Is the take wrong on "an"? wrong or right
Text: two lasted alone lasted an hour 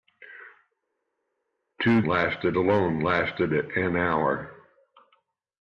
right